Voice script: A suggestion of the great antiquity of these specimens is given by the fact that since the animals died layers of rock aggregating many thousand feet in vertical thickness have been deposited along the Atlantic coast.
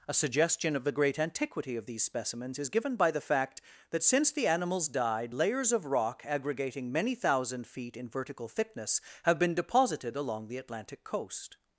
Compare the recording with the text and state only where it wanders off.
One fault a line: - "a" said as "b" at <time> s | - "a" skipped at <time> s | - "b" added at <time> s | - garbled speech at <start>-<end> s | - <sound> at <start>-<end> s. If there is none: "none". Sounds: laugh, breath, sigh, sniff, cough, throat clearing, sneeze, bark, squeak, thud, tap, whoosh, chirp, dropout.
none